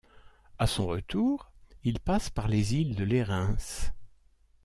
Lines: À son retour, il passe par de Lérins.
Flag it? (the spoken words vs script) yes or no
yes